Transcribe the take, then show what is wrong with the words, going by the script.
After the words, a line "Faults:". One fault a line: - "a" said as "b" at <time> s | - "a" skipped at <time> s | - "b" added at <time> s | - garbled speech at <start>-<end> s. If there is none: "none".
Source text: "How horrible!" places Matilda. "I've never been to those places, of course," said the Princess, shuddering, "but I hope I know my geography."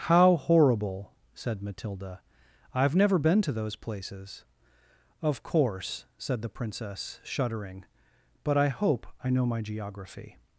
"How horrible!" said Matilda. "I've never been to those places, of course," said the Princess, shuddering, "but I hope I know my geography."
Faults:
- "places" said as "said" at 1.4 s